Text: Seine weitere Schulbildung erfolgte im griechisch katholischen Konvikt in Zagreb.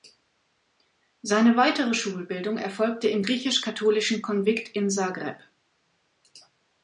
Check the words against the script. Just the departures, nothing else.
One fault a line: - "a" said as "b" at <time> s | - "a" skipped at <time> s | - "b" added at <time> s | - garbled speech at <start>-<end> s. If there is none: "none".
none